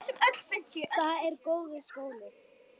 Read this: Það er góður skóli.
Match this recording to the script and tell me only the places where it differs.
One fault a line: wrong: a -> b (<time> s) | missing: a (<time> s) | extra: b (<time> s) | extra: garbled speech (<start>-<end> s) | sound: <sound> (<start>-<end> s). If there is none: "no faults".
no faults